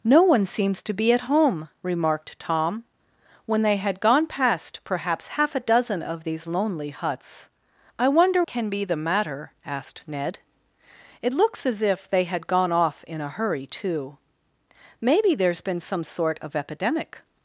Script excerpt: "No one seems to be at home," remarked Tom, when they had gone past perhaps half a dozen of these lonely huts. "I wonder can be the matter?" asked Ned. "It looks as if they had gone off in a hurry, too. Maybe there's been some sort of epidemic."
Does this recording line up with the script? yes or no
yes